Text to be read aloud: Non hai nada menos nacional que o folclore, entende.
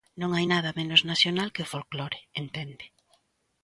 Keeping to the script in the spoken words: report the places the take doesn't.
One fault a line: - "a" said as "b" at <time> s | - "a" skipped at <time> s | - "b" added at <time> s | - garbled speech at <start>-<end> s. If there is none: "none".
none